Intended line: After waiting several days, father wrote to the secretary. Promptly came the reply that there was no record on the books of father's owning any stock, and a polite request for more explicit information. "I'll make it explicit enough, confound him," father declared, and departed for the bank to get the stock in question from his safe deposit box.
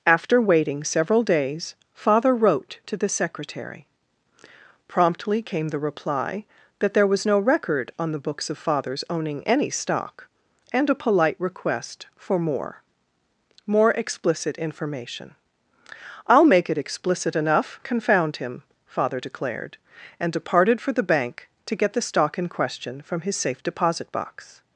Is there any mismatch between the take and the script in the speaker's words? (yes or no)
yes